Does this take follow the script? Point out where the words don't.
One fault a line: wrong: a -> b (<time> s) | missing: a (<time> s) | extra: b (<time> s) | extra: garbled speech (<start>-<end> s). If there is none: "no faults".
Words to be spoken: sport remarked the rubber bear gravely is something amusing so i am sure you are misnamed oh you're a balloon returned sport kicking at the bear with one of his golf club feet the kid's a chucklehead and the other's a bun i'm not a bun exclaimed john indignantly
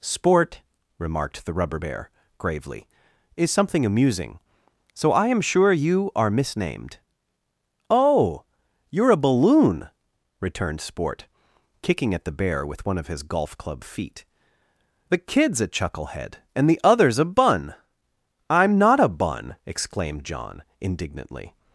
no faults